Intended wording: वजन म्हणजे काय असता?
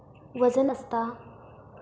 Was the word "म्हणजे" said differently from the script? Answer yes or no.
yes